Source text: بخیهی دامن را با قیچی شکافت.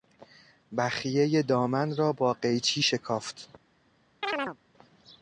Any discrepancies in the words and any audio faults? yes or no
yes